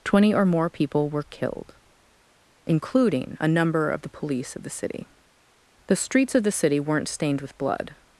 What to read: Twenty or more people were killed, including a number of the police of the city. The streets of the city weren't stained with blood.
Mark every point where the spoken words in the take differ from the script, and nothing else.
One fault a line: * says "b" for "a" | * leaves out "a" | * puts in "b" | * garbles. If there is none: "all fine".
all fine